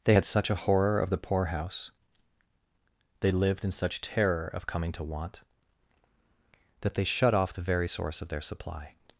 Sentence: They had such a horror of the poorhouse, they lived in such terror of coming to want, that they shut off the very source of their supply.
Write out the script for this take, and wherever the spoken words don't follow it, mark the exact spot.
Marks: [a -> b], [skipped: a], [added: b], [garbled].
They had such a horror of the poorhouse, they lived in such terror of coming to want, that they shut off the very source of their supply.